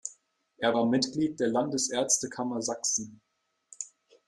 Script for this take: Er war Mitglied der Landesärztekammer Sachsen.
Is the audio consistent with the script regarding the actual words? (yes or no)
yes